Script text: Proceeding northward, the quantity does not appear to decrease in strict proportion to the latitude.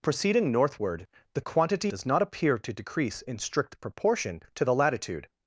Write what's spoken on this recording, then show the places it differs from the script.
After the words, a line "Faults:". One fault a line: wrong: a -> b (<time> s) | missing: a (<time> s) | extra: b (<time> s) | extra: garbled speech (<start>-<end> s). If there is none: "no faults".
Proceeding northward, the quantity does not appear to decrease in strict proportion to the latitude.
Faults:
no faults